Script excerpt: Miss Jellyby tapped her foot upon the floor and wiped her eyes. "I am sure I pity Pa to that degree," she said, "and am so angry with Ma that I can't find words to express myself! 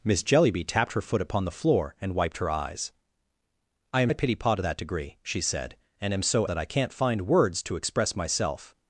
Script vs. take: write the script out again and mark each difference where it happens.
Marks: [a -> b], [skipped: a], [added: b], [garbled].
Miss Jellyby tapped her foot upon the floor and wiped her eyes. "I am [skipped: sure] I pity Pa to that degree," she said, "and am so [skipped: angry with Ma] that I can't find words to express myself!